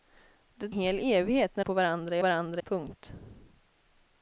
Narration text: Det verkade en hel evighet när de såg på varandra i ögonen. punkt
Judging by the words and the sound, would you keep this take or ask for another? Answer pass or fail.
fail